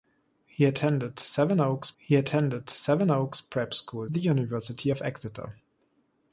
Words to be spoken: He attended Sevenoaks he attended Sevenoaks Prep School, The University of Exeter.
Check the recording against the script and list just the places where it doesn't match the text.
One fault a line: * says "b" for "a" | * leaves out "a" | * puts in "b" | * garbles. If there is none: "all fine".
all fine